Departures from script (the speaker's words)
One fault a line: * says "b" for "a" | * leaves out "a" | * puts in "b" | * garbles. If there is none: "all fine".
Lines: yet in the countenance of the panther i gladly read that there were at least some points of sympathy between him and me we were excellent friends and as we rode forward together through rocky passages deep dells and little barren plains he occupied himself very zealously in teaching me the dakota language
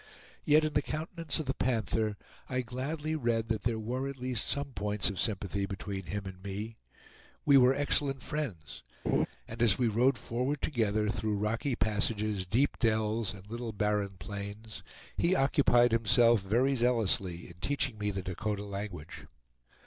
all fine